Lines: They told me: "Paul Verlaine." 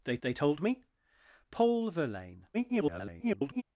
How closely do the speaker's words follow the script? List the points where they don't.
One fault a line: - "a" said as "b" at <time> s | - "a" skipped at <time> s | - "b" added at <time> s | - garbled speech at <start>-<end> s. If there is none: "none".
- "they" added at 0.2 s
- garbled speech at 2.5-3.6 s